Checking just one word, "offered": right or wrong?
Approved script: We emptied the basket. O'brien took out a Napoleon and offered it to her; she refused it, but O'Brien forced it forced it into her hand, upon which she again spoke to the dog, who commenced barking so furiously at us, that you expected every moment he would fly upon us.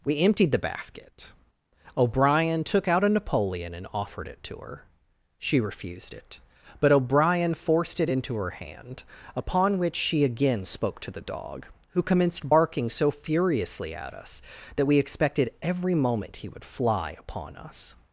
right